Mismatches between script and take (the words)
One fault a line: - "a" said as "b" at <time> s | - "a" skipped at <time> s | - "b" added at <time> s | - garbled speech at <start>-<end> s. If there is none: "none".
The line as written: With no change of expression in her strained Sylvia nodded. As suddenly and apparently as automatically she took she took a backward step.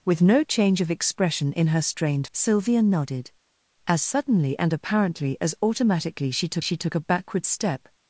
none